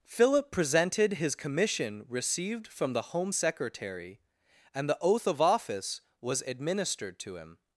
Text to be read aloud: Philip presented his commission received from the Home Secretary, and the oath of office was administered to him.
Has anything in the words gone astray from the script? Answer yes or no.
no